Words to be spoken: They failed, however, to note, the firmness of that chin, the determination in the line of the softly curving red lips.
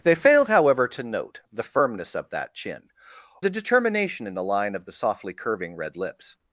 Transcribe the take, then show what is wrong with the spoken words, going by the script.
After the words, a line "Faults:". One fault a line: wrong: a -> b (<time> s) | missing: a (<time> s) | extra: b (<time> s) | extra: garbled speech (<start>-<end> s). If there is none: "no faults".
They failed, however, to note, the firmness of that chin, the determination in the line of the softly curving red lips.
Faults:
no faults